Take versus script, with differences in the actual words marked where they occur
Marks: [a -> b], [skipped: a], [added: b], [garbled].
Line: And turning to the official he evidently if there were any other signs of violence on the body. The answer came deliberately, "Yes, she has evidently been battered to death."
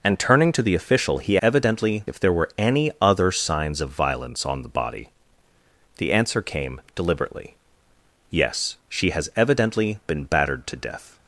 And turning to the official he evidently if there were any other signs of violence on the body. The answer came deliberately, "Yes, she has evidently been battered to death."